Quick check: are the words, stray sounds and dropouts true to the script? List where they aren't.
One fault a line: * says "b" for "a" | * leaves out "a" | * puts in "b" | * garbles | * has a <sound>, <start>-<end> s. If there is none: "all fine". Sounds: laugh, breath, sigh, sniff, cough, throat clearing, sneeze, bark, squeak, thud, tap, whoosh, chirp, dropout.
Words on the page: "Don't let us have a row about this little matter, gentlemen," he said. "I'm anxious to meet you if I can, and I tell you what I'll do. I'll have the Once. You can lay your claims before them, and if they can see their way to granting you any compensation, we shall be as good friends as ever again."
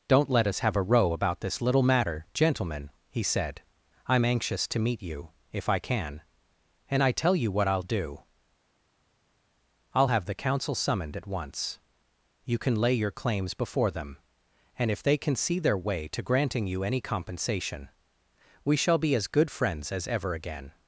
* puts in "Council summoned at"